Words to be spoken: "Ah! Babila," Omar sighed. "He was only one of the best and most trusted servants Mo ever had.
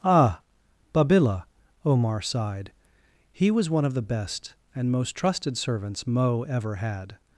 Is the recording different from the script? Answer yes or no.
yes